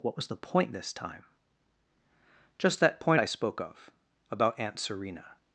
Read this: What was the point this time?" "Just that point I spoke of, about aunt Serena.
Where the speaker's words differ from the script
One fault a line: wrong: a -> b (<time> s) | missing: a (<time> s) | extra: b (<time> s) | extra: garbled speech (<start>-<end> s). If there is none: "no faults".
no faults